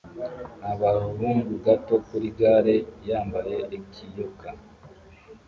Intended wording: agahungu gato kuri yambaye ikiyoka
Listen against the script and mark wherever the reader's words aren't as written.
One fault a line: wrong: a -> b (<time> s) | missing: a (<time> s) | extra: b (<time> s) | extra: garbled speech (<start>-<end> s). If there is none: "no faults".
extra: gare (2.4 s)